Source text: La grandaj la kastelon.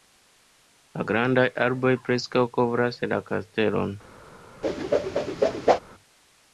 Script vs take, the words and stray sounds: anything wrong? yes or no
yes